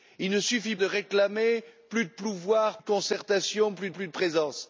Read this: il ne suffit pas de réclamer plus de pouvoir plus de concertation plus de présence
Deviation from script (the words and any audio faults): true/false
true